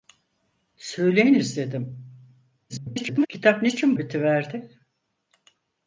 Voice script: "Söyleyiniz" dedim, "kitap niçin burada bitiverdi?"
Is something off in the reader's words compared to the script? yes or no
yes